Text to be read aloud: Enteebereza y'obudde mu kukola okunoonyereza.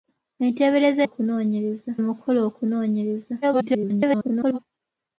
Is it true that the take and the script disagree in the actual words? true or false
true